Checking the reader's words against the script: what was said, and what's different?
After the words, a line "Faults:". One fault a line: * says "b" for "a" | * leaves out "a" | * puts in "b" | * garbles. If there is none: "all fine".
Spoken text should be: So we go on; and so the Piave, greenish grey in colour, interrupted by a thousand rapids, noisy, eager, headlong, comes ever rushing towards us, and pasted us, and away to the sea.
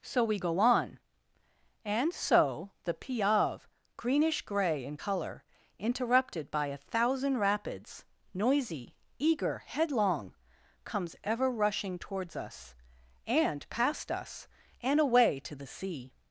So we go on; and so the Piave, greenish grey in colour, interrupted by a thousand rapids, noisy, eager, headlong, comes ever rushing towards us, and past us, and away to the sea.
Faults:
* says "past" for "pasted"